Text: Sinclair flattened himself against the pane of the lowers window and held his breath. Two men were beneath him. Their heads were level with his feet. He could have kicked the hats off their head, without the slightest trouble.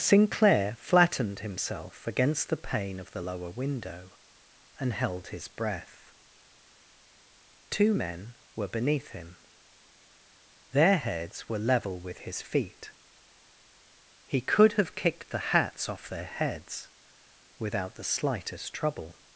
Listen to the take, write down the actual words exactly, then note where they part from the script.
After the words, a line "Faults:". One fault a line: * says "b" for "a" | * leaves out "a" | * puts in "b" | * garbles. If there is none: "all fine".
Sinclair flattened himself against the pane of the lower window and held his breath. Two men were beneath him. Their heads were level with his feet. He could have kicked the hats off their heads, without the slightest trouble.
Faults:
* says "lower" for "lowers"
* says "heads" for "head"